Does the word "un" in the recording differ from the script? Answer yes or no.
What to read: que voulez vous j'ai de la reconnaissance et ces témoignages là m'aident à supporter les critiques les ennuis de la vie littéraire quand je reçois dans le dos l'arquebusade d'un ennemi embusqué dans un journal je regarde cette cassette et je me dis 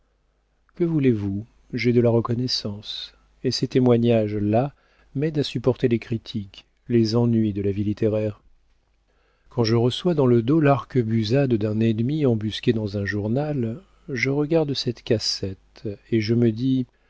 no